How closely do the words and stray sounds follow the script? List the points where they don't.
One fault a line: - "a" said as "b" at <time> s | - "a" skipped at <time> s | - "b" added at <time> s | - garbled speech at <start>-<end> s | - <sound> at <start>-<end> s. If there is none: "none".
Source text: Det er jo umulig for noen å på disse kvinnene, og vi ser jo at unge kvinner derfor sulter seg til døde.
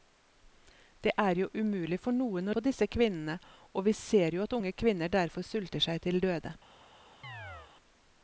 - chirp at 7.2-7.7 s